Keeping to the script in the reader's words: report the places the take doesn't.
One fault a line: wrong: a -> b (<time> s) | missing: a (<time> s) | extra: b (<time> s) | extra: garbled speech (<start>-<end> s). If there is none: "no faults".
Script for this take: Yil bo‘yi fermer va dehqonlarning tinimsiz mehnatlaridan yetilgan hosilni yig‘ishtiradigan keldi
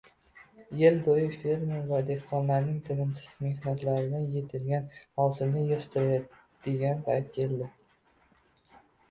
extra: payt (7.1 s)